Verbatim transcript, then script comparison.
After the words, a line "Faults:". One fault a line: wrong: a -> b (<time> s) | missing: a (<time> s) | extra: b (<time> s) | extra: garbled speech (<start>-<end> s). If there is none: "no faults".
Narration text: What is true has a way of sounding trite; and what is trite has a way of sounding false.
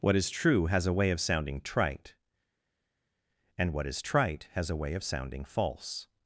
What is true has a way of sounding trite; and what is trite has a way of sounding false.
Faults:
no faults